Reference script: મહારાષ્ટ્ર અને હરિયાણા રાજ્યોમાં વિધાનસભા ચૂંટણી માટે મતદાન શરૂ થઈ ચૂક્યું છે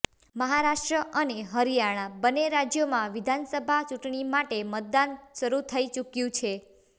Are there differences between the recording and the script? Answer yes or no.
yes